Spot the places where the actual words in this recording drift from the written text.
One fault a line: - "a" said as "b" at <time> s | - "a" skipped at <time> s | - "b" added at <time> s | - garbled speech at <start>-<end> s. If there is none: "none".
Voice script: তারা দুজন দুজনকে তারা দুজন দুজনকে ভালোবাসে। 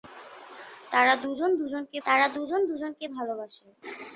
none